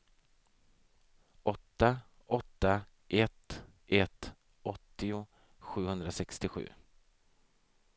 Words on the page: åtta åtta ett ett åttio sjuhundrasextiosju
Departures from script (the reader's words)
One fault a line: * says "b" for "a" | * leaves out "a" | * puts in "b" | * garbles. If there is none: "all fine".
all fine